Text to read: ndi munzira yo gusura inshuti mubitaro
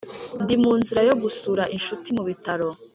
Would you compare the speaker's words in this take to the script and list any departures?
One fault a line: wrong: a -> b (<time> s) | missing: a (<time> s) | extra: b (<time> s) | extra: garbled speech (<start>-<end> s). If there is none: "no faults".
no faults